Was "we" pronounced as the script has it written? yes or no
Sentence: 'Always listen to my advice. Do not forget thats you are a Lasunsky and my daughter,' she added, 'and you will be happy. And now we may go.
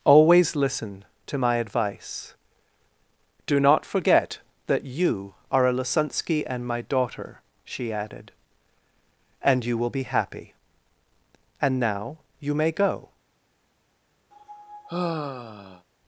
no